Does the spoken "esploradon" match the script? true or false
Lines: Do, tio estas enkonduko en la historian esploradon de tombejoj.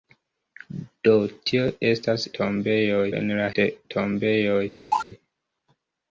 false